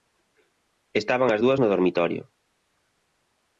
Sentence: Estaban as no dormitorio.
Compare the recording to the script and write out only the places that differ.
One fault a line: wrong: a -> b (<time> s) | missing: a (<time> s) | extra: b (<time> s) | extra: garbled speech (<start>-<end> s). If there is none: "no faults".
extra: dúas (1.4 s)